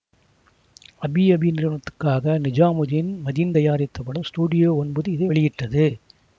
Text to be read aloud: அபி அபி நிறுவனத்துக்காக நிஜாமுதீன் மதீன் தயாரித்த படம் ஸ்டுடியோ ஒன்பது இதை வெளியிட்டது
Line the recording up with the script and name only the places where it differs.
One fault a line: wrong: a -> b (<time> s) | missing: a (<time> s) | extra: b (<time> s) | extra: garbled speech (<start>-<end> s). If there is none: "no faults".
no faults